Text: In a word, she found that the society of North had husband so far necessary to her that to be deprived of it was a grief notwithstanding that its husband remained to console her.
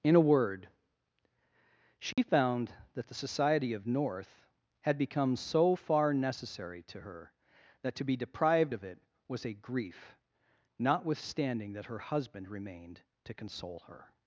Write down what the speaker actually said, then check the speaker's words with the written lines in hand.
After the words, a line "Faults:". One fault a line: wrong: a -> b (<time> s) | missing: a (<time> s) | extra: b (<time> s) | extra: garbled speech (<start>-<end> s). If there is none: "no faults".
In a word, she found that the society of North had become so far necessary to her that to be deprived of it was a grief notwithstanding that her husband remained to console her.
Faults:
wrong: husband -> become (5.0 s)
wrong: its -> her (11.9 s)